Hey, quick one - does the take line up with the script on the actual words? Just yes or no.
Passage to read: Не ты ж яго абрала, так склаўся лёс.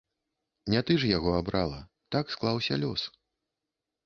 yes